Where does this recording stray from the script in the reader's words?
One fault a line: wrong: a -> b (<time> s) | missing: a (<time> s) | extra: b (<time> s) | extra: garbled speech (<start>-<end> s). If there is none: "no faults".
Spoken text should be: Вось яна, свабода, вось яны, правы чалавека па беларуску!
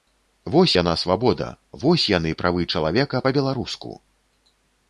no faults